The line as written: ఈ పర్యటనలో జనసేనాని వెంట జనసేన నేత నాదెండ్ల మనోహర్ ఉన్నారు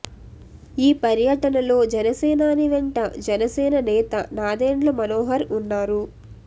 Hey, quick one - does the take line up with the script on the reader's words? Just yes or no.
yes